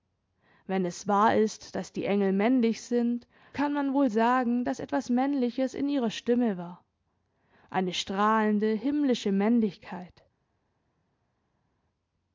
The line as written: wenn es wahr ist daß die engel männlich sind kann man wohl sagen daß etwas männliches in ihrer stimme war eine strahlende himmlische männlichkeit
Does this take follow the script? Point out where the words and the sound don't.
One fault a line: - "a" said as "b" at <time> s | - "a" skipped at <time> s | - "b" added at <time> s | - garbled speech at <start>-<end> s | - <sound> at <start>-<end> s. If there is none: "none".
none